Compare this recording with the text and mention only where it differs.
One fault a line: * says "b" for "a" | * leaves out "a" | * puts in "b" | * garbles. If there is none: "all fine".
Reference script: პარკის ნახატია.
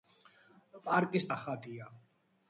all fine